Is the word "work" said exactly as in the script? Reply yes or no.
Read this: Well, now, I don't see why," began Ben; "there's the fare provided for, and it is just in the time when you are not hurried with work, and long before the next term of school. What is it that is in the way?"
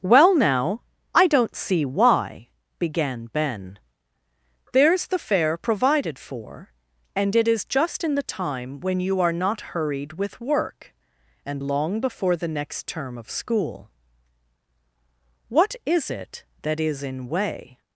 yes